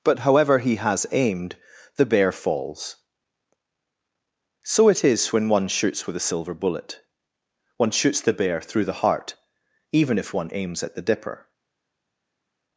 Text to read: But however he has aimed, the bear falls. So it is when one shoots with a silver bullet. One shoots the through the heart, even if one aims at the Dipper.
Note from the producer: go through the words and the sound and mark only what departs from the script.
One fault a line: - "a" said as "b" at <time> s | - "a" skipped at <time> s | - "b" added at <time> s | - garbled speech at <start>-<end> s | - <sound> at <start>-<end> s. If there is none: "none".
- "bear" added at 8.3 s